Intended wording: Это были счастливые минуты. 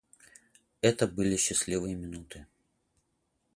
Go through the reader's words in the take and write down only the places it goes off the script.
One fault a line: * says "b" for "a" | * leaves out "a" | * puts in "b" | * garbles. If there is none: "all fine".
all fine